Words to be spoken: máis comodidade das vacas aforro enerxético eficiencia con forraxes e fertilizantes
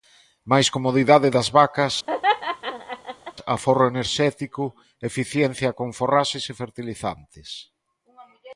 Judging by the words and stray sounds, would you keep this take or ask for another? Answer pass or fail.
fail